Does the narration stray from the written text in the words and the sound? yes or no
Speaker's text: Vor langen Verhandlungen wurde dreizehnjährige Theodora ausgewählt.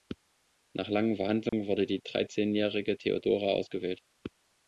yes